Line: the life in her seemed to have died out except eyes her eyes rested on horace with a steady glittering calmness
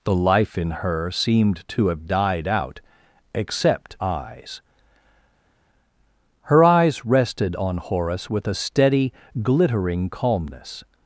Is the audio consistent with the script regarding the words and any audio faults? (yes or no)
yes